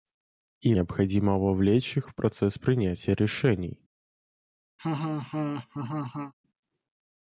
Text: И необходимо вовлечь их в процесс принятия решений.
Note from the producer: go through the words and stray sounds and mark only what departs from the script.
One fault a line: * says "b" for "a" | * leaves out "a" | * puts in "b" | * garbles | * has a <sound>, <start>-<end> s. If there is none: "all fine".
* has a laugh, 4.8-6.3 s